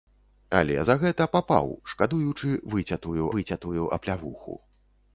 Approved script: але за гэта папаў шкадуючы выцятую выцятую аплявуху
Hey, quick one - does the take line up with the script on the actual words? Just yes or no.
yes